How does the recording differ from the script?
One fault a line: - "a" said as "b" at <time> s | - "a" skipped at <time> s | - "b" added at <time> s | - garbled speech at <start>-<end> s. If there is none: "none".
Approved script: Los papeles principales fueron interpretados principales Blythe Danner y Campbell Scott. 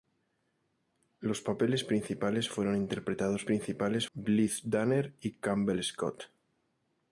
none